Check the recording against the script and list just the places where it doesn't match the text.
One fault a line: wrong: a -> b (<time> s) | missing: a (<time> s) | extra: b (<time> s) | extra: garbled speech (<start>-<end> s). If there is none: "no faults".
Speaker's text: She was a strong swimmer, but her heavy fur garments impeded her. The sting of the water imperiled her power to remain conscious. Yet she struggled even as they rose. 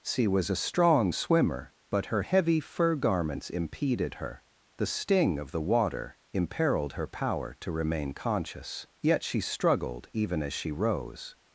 wrong: they -> she (10.5 s)